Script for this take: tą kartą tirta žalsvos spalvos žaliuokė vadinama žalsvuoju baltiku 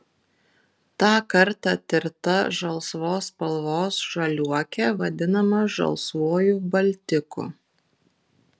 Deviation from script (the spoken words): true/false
false